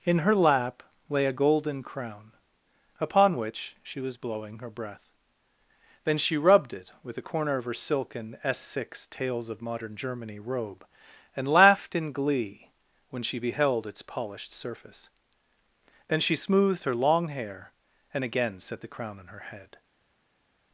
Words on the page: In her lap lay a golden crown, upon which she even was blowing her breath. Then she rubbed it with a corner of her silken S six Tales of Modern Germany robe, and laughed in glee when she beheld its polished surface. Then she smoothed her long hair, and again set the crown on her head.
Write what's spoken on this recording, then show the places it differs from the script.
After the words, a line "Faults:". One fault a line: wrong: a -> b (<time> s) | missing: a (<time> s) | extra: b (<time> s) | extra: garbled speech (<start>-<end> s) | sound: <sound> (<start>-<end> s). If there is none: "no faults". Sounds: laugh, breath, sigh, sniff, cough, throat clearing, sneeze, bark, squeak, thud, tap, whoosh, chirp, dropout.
In her lap lay a golden crown, upon which she was blowing her breath. Then she rubbed it with a corner of her silken S six Tales of Modern Germany robe, and laughed in glee when she beheld its polished surface. Then she smoothed her long hair, and again set the crown on her head.
Faults:
missing: even (4.0 s)